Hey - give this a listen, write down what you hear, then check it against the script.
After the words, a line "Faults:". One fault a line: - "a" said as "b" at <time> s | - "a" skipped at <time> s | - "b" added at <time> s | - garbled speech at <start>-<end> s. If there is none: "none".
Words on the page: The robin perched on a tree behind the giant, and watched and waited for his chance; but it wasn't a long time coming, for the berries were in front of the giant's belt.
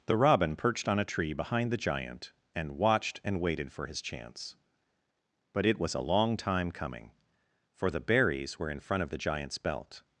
The robin perched on a tree behind the giant, and watched and waited for his chance; but it was a long time coming, for the berries were in front of the giant's belt.
Faults:
- "wasn't" said as "was" at 5.8 s